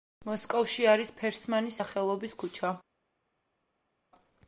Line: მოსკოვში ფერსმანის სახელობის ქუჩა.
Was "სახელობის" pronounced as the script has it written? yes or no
yes